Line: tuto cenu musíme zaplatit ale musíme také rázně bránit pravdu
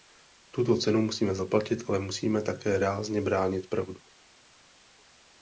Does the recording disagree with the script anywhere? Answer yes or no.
no